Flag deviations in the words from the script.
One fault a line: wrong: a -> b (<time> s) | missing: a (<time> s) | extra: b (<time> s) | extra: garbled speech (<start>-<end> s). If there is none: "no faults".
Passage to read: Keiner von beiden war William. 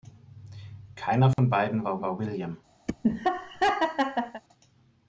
extra: war (2.0 s)